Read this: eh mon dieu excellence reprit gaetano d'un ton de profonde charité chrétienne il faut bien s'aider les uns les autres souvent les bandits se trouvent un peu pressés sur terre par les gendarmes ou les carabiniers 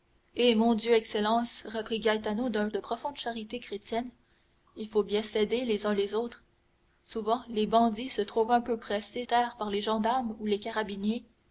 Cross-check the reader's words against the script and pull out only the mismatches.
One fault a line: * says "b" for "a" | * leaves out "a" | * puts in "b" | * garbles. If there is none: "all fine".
* leaves out "ton"
* leaves out "sur"